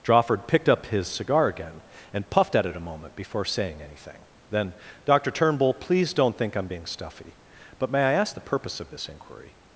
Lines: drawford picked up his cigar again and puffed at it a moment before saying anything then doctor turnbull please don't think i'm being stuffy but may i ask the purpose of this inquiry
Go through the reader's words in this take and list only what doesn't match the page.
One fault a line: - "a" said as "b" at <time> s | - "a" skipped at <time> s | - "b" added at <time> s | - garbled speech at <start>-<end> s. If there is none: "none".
none